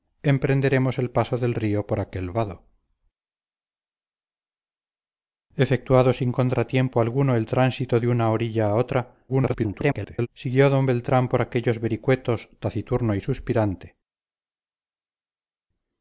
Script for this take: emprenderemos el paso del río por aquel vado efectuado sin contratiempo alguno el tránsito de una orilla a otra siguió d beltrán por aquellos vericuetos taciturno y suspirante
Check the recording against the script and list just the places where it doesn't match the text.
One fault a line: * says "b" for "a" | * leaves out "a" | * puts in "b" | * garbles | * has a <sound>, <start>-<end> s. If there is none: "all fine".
* garbles